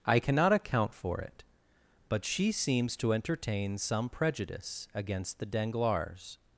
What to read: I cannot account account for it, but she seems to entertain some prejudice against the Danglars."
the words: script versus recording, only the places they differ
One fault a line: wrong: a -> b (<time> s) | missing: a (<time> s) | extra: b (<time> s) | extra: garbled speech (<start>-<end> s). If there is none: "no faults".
missing: account (0.9 s)